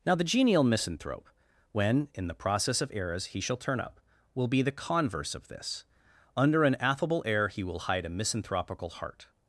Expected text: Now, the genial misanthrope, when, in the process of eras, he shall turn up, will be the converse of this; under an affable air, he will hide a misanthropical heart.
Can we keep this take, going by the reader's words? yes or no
yes